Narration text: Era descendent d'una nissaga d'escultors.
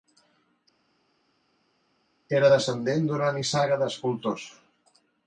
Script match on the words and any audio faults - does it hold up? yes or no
yes